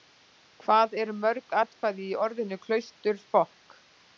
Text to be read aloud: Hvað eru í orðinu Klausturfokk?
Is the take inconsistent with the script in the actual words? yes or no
yes